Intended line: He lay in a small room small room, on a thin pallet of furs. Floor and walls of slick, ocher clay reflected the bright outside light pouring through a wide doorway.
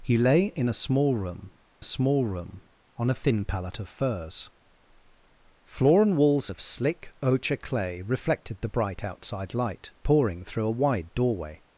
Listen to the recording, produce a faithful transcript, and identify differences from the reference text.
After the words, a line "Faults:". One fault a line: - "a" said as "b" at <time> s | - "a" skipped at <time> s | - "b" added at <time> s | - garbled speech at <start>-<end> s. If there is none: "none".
He lay in a small room small room, on a thin pallet of furs. Floor and walls of slick, ocher clay reflected the bright outside light pouring through a wide doorway.
Faults:
none